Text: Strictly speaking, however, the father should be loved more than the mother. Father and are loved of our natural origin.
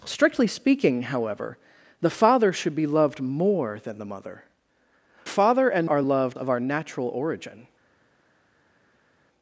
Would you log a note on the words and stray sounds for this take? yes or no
no